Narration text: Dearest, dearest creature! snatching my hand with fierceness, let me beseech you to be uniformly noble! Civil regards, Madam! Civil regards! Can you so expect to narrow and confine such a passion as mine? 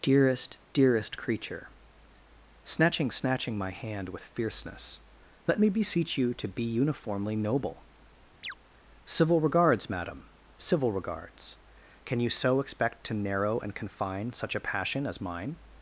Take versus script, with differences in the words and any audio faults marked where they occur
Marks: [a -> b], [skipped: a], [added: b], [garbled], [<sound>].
Dearest, dearest creature! snatching [added: snatching] my hand with fierceness, let me beseech you to be uniformly noble! [chirp] Civil regards, Madam! Civil regards! Can you so expect to narrow and confine such a passion as mine?